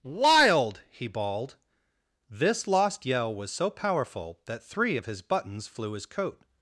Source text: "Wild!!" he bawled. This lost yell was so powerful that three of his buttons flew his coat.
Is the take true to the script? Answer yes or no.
yes